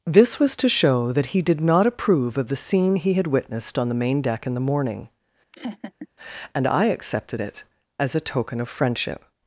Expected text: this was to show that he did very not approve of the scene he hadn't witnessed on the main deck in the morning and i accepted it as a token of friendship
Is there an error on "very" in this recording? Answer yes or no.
yes